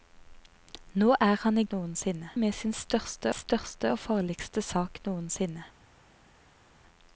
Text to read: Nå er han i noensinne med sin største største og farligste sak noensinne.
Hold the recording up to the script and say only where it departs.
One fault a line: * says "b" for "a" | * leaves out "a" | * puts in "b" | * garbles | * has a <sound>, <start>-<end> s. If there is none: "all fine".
all fine